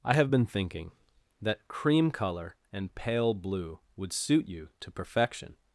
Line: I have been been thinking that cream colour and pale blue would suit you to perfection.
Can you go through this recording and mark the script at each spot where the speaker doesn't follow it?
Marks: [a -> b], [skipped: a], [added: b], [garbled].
I have been [skipped: been] thinking that cream colour and pale blue would suit you to perfection.